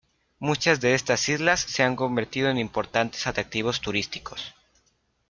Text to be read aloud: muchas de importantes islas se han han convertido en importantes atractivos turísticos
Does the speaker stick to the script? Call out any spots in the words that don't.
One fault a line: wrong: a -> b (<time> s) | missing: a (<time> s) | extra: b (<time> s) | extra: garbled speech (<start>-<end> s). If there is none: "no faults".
wrong: importantes -> estas (0.9 s)
missing: han (1.9 s)